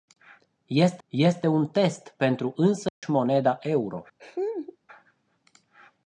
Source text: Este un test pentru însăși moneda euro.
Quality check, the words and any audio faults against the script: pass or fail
fail